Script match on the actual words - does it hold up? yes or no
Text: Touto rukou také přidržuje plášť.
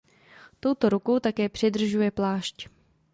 yes